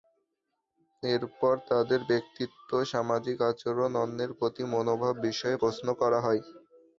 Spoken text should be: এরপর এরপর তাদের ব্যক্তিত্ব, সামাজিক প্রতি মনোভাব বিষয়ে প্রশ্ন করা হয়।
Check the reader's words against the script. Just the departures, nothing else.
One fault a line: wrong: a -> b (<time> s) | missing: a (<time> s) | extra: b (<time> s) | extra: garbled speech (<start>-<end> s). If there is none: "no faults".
missing: এরপর (1.5 s)
extra: আচরণ অন্যের (3.5 s)